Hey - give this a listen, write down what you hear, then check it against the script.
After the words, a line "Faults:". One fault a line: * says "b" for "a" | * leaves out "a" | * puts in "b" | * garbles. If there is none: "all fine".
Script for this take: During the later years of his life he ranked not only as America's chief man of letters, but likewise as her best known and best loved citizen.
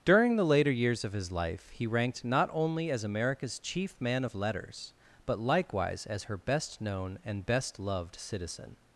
During the later years of his life he ranked not only as America's chief man of letters, but likewise as her best known and best loved citizen.
Faults:
all fine